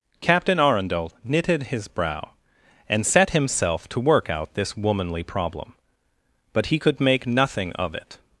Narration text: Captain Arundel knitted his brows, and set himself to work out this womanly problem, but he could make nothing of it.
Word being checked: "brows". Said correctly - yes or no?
no